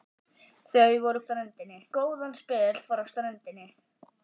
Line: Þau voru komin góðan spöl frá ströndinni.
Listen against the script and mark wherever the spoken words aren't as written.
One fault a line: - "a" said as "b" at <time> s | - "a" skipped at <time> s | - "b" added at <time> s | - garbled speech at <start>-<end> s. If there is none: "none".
- "komin" said as "ströndinni" at 1.3 s